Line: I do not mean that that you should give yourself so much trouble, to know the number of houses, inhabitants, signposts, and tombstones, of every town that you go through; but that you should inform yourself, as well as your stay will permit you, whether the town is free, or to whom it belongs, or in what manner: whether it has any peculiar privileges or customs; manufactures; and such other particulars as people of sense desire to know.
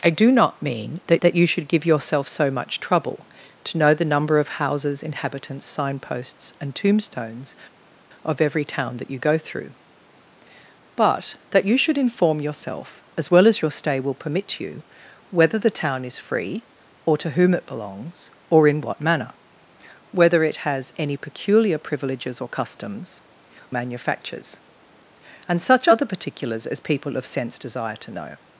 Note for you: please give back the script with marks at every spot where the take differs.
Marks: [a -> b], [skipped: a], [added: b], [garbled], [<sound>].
I do not mean that that you should give yourself so much trouble, to know the number of houses, inhabitants, signposts, and tombstones, of every town that you go through; but that you should inform yourself, as well as your stay will permit you, whether the town is free, or to whom it belongs, or in what manner: whether it has any peculiar privileges or customs; manufactures; and such other particulars as people of sense desire to know.